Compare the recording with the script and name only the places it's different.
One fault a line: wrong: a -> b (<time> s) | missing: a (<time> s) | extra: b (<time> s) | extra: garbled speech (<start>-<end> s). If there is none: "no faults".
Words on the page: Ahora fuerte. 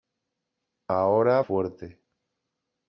no faults